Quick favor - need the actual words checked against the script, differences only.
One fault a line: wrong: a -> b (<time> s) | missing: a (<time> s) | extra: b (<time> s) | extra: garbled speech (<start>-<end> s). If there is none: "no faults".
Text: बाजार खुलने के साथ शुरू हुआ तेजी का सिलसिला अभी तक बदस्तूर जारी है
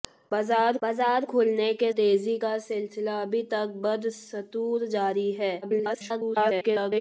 extra: बाजार (0.8 s)
missing: साथ शुरू हुआ (1.9 s)
extra: garbled speech (5.6-7.0 s)